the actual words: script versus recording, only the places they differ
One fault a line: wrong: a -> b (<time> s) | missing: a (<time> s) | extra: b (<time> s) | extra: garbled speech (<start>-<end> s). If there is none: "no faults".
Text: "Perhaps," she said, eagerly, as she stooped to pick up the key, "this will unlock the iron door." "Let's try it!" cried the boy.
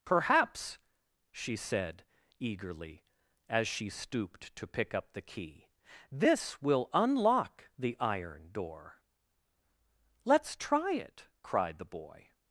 no faults